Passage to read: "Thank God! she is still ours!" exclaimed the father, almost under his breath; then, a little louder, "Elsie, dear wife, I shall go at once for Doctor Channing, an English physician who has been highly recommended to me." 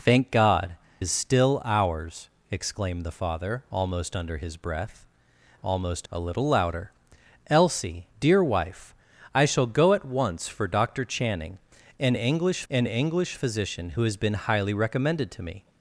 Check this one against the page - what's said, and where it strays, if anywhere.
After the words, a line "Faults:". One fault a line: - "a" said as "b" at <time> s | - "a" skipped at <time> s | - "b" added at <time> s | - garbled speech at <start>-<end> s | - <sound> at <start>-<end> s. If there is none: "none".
"Thank God! is still ours!" exclaimed the father, almost under his breath; almost, a little louder, "Elsie, dear wife, I shall go at once for Doctor Channing, an English an English physician who has been highly recommended to me."
Faults:
- "she" skipped at 0.8 s
- "then" said as "almost" at 5.6 s
- "an English" added at 12.7 s